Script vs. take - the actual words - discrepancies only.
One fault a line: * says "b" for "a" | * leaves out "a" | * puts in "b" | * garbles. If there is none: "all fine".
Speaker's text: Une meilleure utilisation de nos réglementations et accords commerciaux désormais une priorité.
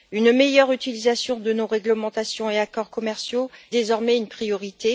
all fine